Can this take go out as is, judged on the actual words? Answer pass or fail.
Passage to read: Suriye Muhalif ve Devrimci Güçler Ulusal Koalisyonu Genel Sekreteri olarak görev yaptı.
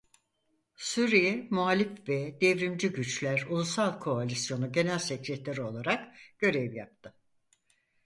pass